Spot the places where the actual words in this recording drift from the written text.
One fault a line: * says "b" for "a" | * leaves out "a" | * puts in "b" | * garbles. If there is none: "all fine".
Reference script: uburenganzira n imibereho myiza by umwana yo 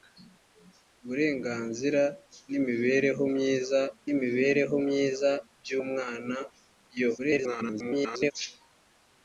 * puts in "imibereho myiza"
* garbles